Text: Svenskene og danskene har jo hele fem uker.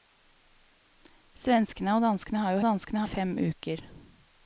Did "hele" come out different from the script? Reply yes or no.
yes